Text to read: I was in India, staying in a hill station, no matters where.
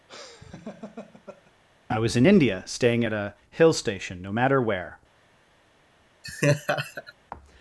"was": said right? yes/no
yes